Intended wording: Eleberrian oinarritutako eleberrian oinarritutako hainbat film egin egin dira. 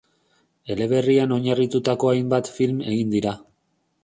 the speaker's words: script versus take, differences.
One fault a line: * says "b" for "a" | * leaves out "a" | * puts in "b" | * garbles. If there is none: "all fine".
* leaves out "eleberrian oinarritutako"
* leaves out "egin"